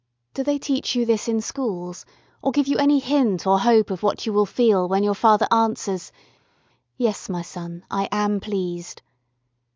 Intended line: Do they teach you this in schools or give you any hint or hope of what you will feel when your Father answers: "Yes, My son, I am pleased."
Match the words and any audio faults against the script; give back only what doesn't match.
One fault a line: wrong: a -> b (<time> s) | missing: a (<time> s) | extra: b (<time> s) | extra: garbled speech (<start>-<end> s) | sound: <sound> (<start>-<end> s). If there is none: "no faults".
no faults